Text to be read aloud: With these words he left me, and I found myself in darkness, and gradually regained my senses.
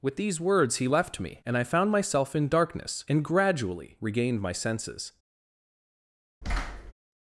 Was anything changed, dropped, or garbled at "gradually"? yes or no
no